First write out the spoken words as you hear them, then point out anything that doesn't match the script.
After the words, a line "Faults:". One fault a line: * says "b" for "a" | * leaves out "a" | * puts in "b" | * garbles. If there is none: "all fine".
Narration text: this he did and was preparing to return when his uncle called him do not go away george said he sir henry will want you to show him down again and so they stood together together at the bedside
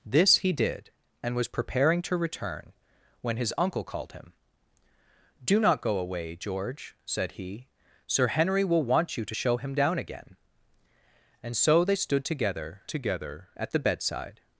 this he did and was preparing to return when his uncle called him do not go away george said he sir henry will want you to show him down again and so they stood together together at the bedside
Faults:
all fine